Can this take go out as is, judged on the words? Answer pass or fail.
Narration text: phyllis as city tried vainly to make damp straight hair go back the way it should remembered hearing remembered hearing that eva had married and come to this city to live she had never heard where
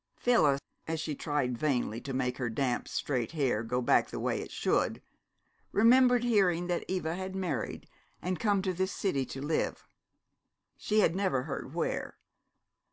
fail